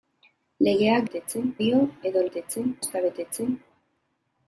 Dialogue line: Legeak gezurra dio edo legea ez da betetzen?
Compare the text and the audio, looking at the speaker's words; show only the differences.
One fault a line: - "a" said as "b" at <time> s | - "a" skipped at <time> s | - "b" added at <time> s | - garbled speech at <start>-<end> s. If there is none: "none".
- "gezurra" said as "betetzen" at 1.1 s
- "legea" said as "betetzen" at 2.3 s